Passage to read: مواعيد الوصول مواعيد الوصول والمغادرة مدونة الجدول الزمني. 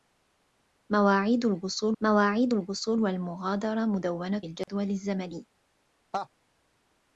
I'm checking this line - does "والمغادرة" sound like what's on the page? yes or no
yes